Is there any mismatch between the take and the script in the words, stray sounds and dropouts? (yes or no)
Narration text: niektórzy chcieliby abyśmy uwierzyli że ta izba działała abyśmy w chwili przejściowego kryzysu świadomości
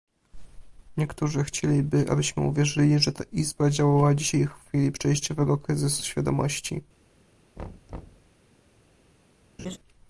yes